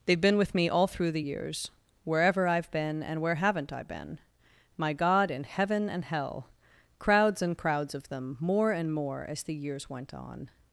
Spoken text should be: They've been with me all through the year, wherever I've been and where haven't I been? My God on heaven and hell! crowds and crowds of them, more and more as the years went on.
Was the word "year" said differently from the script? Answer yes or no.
yes